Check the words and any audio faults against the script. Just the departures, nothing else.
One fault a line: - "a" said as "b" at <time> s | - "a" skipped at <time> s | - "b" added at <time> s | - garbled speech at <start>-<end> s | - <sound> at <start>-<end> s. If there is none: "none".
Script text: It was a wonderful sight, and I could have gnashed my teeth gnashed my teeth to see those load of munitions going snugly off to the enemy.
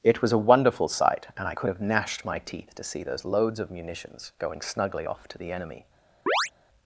- "gnashed my teeth" skipped at 2.7 s
- "load" said as "loads" at 3.2 s
- chirp at 6.3-6.5 s